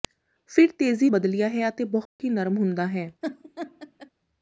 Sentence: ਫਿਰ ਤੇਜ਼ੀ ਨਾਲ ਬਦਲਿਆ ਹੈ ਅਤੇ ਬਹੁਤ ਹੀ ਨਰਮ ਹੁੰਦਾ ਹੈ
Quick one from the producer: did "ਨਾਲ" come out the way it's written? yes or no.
no